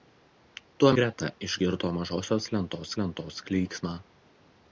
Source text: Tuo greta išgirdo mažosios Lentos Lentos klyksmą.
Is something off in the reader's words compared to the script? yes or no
no